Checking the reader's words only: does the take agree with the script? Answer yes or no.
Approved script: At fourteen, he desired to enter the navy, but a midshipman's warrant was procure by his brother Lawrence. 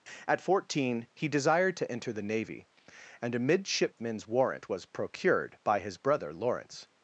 no